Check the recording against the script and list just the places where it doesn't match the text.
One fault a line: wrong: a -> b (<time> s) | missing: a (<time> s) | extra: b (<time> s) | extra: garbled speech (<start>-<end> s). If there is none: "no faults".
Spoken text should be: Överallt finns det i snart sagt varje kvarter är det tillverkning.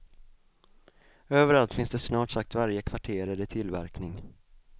no faults